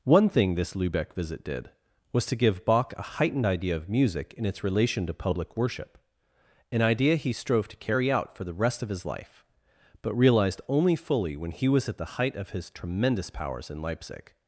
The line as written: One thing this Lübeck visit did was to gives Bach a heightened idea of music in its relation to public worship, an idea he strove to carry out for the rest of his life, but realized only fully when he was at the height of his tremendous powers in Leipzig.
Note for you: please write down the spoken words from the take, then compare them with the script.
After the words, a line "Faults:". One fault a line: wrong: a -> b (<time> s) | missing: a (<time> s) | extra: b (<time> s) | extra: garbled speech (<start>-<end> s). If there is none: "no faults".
One thing this Lübeck visit did was to give Bach a heightened idea of music in its relation to public worship, an idea he strove to carry out for the rest of his life, but realized only fully when he was at the height of his tremendous powers in Leipzig.
Faults:
wrong: gives -> give (2.4 s)